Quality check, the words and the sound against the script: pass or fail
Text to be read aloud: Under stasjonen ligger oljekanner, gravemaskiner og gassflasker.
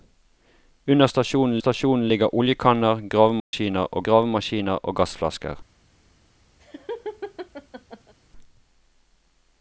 fail